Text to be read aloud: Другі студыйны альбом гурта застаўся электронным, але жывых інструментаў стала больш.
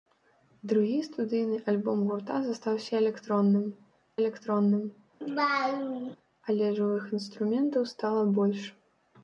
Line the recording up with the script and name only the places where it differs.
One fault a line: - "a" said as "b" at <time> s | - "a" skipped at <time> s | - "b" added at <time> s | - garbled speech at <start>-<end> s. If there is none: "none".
- "электронным" added at 4.2 s